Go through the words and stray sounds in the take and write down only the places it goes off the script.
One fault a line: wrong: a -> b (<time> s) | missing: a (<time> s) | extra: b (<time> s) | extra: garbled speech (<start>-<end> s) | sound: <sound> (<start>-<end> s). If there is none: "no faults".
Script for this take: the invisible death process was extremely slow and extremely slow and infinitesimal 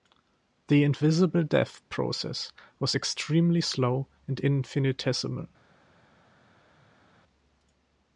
missing: extremely slow and (4.4 s)